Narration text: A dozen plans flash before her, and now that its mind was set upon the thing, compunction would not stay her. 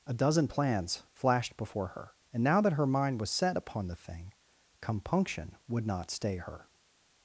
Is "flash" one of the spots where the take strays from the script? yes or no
yes